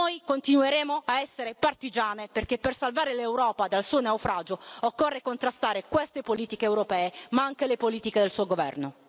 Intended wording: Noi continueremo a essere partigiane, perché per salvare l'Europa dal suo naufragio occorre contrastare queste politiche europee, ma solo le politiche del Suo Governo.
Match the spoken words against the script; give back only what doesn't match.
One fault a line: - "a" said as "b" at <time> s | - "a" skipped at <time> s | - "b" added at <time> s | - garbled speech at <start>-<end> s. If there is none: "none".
- "solo" said as "anche" at 7.4 s